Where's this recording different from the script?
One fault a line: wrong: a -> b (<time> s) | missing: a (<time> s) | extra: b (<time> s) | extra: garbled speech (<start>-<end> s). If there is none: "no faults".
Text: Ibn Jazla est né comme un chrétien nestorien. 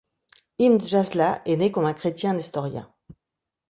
no faults